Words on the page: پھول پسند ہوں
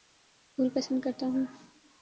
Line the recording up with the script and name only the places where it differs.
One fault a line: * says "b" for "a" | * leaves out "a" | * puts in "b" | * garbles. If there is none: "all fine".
* puts in "کرتا"